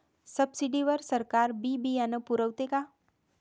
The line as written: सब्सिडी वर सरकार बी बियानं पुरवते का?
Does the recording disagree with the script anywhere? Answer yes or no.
no